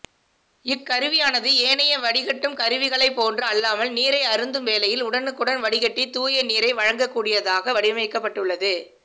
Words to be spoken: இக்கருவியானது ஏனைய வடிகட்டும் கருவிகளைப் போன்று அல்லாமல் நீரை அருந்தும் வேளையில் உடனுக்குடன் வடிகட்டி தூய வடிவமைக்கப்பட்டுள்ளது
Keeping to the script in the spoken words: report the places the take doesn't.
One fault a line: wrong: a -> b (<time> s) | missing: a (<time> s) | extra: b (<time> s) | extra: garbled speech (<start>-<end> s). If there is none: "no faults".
extra: நீரை வழங்கக்கூடியதாக (6.5 s)